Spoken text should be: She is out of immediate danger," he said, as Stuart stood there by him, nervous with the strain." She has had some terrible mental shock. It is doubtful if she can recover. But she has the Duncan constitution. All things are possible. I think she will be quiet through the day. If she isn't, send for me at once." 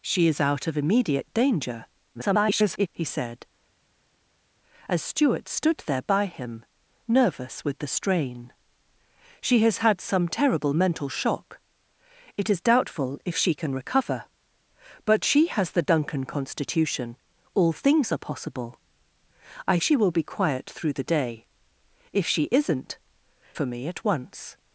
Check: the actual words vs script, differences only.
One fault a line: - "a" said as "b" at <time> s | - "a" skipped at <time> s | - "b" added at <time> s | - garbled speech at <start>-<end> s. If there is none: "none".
- garbled speech at 2.1-2.9 s
- "think" skipped at 19.8 s
- "send" skipped at 23.0 s